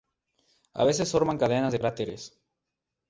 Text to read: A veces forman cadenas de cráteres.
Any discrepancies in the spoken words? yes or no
no